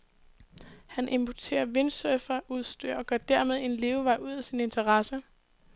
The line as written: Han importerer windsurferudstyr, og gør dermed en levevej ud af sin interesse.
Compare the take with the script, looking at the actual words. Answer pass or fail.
pass